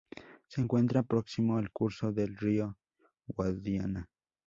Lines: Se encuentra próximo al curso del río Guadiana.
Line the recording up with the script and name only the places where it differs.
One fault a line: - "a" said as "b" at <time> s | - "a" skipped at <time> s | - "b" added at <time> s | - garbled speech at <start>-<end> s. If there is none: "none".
none